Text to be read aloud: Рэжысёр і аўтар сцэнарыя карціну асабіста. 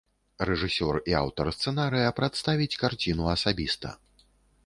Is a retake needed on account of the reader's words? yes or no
yes